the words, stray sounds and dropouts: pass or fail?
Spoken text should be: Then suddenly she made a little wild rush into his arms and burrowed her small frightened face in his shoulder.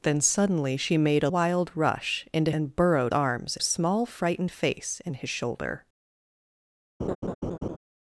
fail